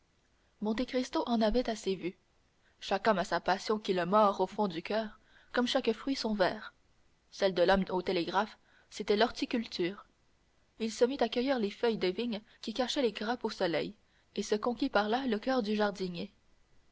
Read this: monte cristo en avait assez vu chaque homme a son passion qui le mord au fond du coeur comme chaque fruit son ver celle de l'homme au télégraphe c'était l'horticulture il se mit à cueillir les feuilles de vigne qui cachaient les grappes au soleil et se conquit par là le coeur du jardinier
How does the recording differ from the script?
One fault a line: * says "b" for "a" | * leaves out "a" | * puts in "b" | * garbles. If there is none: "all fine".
* says "sa" for "son"